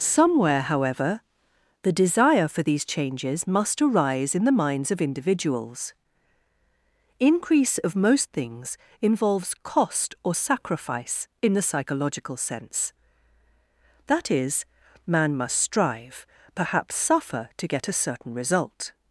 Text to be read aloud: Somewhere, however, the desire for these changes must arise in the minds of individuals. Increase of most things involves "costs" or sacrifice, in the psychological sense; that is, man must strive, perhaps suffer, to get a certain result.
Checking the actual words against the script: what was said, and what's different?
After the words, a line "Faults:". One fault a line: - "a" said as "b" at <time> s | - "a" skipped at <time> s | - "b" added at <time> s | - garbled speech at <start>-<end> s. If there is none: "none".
Somewhere, however, the desire for these changes must arise in the minds of individuals. Increase of most things involves "cost" or sacrifice, in the psychological sense; that is, man must strive, perhaps suffer, to get a certain result.
Faults:
- "costs" said as "cost" at 9.6 s